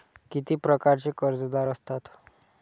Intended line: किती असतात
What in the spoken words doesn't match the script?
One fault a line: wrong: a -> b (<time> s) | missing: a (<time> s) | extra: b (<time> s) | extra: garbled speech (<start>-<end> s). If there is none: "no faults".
extra: प्रकारचे कर्जदार (0.6 s)